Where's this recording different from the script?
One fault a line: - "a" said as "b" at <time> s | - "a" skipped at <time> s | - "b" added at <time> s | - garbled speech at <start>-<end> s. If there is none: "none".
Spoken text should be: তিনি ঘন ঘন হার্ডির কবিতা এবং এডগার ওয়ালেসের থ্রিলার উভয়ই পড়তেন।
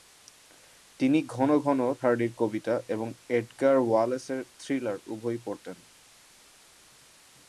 none